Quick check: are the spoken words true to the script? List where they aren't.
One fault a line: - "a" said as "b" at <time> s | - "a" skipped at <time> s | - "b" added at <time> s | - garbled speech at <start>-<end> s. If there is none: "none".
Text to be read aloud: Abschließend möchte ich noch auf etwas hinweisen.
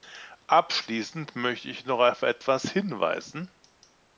none